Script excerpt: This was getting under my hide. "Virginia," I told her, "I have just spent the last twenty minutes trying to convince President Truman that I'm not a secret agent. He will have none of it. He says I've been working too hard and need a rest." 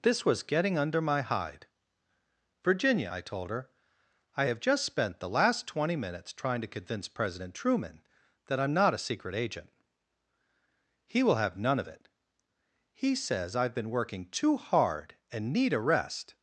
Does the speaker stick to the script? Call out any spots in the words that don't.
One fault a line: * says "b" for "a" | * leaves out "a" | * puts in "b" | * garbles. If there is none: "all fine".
all fine